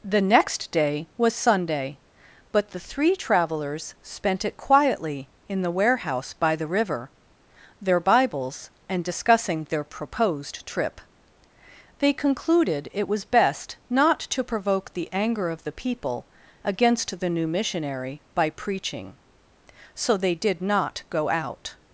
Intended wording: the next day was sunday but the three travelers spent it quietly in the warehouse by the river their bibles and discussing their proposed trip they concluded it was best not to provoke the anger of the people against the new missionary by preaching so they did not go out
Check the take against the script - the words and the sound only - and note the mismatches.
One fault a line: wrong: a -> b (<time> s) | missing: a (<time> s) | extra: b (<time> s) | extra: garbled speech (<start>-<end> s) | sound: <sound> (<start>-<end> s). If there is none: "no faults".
no faults